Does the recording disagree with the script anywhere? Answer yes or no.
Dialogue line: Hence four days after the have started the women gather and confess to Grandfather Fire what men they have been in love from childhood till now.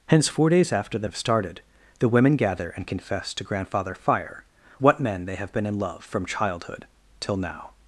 no